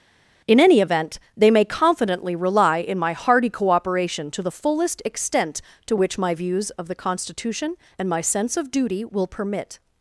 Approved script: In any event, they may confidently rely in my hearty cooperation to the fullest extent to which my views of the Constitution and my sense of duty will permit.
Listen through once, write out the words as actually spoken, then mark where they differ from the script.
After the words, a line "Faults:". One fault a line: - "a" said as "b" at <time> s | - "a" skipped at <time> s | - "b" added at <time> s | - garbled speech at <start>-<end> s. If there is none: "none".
In any event, they may confidently rely in my hearty cooperation to the fullest extent to which my views of the Constitution and my sense of duty will permit.
Faults:
none